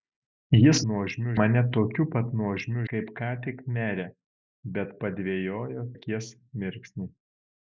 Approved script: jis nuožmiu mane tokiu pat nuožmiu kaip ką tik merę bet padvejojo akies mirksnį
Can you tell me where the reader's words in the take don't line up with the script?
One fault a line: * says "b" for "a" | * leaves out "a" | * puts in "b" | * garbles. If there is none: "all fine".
all fine